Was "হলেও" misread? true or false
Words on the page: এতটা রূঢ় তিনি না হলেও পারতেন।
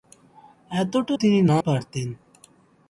true